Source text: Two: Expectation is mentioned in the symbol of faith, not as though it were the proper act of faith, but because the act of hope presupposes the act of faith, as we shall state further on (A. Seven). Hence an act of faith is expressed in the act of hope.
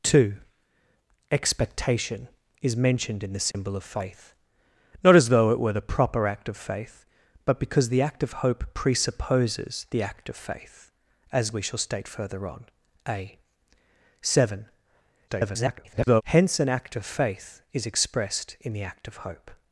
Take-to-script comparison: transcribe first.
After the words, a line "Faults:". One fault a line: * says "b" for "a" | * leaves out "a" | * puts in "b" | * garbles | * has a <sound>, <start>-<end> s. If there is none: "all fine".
Two: Expectation is mentioned in the symbol of faith, not as though it were the proper act of faith, but because the act of hope presupposes the act of faith, as we shall state further on (A. Seven). [garbled] Hence an act of faith is expressed in the act of hope.
Faults:
* has a dropout, 3.5-3.5 s
* garbles